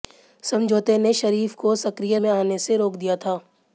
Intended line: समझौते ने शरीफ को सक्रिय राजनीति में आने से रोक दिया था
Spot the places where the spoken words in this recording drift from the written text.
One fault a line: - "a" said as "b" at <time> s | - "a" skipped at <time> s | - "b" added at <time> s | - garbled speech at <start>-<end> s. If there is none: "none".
- "राजनीति" skipped at 2.2 s